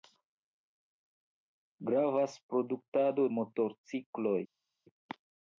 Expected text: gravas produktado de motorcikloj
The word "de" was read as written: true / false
false